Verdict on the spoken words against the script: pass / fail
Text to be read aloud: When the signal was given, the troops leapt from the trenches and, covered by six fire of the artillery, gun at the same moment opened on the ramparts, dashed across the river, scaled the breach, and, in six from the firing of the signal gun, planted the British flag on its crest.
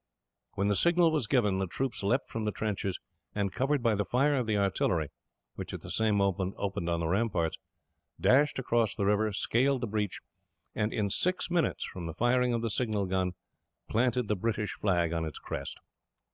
fail